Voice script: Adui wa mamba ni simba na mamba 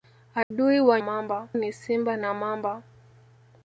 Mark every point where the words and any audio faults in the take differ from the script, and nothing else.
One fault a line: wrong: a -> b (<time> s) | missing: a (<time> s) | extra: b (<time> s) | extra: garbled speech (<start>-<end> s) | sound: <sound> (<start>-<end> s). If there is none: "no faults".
sound: dropout (0.4-0.5 s)